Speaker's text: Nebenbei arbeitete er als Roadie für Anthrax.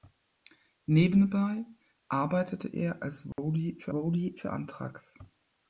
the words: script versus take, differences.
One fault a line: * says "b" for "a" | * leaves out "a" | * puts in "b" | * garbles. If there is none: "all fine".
* puts in "Roadie für"